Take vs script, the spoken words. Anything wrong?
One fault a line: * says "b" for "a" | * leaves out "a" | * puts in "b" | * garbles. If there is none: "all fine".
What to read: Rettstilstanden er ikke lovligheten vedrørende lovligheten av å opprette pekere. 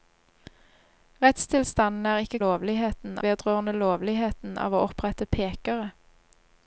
all fine